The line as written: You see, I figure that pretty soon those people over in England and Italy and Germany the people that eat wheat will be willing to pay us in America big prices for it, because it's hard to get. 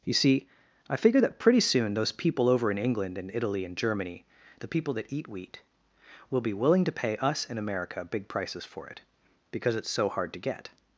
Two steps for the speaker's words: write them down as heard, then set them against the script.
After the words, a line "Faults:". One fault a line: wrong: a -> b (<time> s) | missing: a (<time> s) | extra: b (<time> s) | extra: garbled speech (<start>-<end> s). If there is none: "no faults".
You see, I figure that pretty soon those people over in England and Italy and Germany the people that eat wheat will be willing to pay us in America big prices for it, because it's so hard to get.
Faults:
extra: so (9.9 s)